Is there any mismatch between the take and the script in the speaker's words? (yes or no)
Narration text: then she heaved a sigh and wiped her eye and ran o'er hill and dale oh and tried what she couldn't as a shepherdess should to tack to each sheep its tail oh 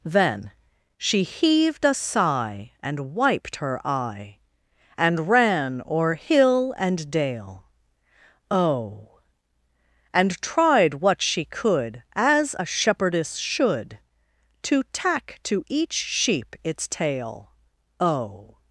yes